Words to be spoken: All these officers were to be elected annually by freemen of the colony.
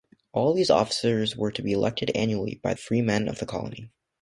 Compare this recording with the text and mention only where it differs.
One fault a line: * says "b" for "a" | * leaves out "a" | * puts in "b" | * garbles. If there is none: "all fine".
all fine